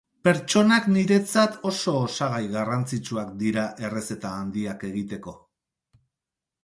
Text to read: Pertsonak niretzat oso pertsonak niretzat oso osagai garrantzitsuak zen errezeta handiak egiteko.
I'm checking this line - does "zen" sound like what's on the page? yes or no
no